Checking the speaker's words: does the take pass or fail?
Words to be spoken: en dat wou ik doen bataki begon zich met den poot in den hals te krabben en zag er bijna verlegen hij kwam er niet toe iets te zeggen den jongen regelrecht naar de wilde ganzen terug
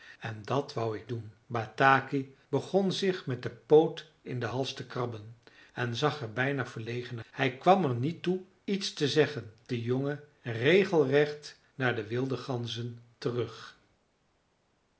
pass